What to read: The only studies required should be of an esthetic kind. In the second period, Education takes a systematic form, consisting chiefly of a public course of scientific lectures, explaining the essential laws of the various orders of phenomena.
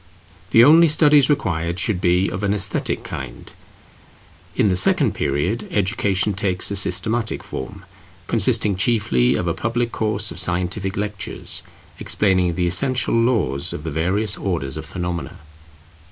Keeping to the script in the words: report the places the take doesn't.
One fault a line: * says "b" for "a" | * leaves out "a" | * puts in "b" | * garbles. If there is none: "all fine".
all fine